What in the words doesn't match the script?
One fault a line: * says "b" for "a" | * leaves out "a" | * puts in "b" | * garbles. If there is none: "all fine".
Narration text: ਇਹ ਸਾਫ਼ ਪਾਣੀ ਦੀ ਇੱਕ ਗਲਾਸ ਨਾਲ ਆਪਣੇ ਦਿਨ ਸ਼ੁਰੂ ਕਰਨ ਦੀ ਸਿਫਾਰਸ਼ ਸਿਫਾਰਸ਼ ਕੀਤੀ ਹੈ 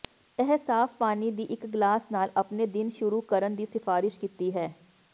* leaves out "ਸਿਫਾਰਸ਼"